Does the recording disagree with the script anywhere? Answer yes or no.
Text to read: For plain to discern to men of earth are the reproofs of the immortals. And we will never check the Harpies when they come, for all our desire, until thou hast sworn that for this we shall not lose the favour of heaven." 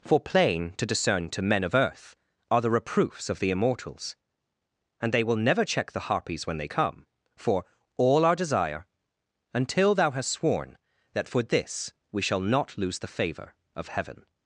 yes